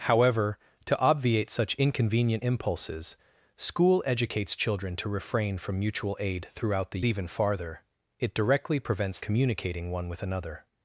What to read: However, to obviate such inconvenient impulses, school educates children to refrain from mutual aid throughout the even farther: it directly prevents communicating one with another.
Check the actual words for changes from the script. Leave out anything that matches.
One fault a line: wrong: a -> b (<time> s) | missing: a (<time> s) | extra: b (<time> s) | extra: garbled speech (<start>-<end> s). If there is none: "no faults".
no faults